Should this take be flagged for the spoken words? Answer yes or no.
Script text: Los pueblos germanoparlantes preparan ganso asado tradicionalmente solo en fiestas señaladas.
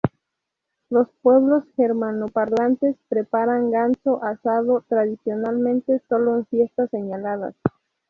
no